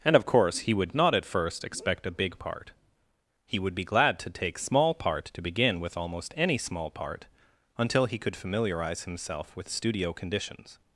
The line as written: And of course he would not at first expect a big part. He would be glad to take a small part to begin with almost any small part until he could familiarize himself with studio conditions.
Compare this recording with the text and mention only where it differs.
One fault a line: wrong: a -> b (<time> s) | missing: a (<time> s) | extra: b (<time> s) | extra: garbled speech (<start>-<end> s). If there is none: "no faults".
missing: a (4.6 s)